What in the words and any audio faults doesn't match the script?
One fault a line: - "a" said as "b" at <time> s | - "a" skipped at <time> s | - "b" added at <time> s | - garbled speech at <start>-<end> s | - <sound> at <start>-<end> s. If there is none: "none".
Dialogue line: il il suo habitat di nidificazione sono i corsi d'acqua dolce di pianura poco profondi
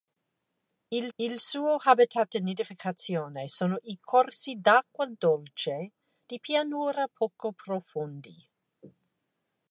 none